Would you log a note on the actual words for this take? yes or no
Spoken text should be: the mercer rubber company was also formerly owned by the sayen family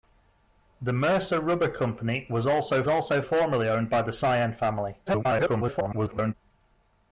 yes